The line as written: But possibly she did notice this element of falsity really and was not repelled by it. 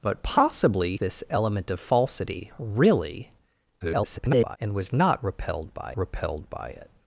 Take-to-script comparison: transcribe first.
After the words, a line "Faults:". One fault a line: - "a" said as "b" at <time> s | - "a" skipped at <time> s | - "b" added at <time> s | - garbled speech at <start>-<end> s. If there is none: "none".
But possibly this element of falsity really [garbled] and was not repelled by repelled by it.
Faults:
- "she did notice" skipped at 1.0 s
- garbled speech at 3.8-4.6 s
- "repelled by" added at 6.0 s